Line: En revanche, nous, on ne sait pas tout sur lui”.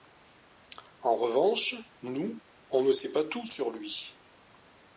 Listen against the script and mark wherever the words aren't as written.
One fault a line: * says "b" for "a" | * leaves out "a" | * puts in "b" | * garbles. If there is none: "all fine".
all fine